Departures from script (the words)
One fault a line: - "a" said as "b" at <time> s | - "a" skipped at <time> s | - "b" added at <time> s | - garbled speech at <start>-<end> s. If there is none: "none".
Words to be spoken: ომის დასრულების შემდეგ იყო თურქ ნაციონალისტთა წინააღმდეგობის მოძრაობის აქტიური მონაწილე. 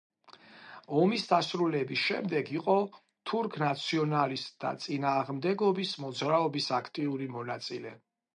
none